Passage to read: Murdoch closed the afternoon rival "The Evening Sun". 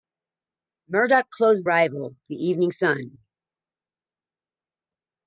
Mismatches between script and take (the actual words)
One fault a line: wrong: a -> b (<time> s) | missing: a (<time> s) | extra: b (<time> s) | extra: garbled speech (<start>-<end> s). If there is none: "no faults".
missing: the afternoon (1.7 s)